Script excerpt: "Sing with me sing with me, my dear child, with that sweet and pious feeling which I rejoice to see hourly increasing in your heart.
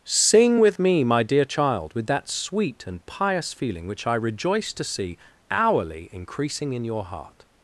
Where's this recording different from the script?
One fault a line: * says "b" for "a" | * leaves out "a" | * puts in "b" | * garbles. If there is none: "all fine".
* leaves out "sing with me"